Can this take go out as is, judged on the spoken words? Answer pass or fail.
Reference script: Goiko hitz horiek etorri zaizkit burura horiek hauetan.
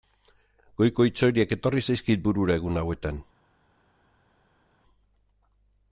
fail